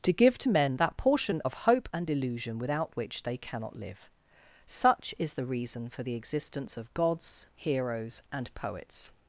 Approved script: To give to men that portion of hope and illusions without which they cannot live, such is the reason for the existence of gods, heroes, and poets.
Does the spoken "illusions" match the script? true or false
false